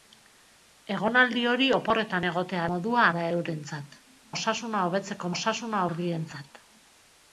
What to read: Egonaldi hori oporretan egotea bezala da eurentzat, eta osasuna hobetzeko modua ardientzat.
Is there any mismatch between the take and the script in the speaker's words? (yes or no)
yes